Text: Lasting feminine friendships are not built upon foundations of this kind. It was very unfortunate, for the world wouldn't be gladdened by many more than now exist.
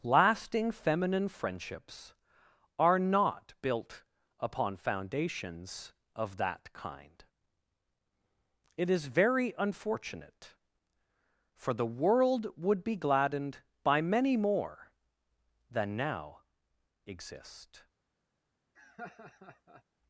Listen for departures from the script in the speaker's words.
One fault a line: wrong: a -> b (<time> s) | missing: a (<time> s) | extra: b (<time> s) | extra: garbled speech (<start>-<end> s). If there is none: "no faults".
wrong: this -> that (6.4 s)
wrong: was -> is (8.9 s)
wrong: wouldn't -> would (12.6 s)